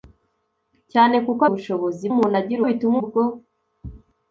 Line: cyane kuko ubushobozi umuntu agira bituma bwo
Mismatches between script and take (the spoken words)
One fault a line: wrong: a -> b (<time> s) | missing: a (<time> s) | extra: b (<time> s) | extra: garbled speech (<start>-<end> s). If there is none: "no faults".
no faults